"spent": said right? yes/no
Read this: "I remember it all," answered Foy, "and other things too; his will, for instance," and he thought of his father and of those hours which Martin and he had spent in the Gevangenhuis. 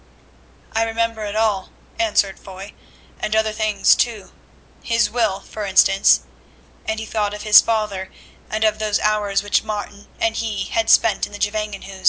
yes